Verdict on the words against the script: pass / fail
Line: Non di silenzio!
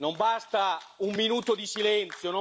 fail